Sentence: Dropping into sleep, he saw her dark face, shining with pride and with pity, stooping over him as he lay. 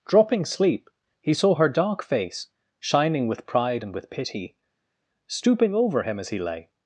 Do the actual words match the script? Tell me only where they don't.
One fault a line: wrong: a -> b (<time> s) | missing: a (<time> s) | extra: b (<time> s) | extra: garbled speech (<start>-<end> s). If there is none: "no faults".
missing: into (0.5 s)